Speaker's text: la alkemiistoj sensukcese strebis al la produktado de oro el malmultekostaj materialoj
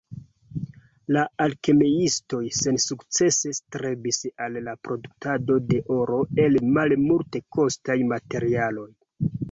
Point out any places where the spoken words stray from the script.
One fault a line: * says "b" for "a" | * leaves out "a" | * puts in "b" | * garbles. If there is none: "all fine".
all fine